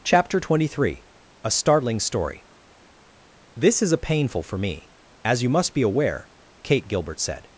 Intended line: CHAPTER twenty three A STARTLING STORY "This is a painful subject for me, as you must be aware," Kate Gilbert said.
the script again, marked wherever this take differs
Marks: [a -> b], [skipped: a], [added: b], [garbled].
CHAPTER twenty three A STARTLING STORY "This is a painful [skipped: subject] for me, as you must be aware," Kate Gilbert said.